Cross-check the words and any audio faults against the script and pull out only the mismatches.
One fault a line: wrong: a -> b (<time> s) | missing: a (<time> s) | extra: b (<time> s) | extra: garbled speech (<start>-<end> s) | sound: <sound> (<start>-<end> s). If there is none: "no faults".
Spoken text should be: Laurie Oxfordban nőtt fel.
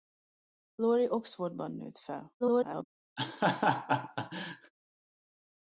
extra: garbled speech (2.4-2.8 s)
sound: laugh (3.2-4.7 s)